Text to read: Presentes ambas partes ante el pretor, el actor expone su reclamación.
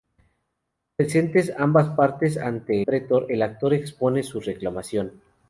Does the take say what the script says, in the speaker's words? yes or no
no